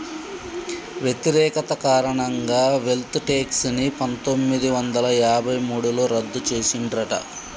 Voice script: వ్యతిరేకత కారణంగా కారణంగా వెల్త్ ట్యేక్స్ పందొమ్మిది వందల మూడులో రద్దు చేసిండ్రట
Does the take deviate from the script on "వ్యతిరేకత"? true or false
false